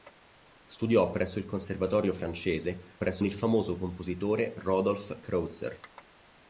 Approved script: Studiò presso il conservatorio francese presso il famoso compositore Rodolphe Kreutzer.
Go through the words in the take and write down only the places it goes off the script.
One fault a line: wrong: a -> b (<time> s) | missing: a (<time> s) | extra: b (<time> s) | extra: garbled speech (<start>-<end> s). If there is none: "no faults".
no faults